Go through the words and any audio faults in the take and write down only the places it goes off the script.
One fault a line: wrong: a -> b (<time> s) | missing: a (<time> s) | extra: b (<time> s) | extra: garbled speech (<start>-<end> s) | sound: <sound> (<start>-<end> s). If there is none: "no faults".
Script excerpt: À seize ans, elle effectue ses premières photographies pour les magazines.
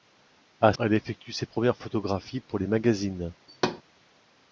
missing: seize ans (0.7 s)
sound: thud (3.5-3.8 s)